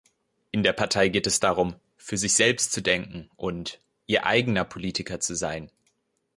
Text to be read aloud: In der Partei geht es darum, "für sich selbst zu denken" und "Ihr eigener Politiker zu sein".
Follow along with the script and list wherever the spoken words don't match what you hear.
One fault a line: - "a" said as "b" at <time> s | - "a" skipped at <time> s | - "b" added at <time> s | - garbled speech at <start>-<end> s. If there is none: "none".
none